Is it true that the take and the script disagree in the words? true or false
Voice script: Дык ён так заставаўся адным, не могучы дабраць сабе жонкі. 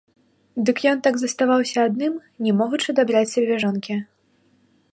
false